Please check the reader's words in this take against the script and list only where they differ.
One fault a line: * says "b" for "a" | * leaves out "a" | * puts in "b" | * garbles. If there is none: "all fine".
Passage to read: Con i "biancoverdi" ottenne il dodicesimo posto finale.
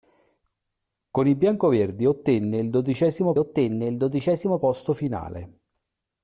* puts in "ottenne il dodicesimo"